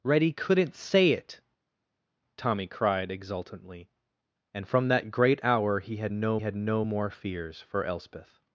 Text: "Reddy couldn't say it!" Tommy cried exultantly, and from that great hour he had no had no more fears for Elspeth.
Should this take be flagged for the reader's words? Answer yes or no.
no